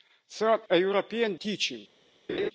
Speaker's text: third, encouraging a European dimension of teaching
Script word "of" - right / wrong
wrong